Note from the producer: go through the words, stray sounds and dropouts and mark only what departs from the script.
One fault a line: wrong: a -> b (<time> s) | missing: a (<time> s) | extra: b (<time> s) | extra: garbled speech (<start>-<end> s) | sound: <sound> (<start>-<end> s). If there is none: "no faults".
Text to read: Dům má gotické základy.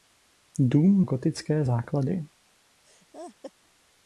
missing: má (1.0 s)
sound: laugh (2.8-3.5 s)